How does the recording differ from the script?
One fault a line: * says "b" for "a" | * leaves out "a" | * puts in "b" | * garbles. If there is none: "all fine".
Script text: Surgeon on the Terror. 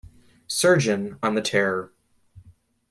all fine